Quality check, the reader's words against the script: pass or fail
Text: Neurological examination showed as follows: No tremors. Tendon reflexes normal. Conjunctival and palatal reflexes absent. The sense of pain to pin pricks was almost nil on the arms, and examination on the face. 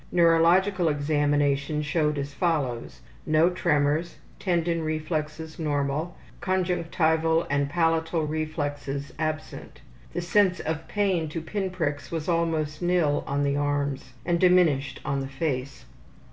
fail